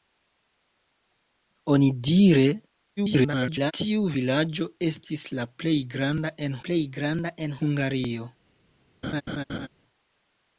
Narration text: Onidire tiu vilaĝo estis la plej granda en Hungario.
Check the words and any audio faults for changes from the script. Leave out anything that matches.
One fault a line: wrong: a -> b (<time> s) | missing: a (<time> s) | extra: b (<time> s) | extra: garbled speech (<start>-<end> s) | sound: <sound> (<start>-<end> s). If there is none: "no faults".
extra: garbled speech (3.0-3.7 s)
extra: plej granda en (6.7 s)
sound: laugh (9.0-9.7 s)